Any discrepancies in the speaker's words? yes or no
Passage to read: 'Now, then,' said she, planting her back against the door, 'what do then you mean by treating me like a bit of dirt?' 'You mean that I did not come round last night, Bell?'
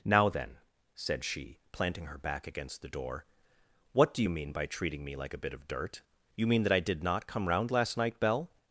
yes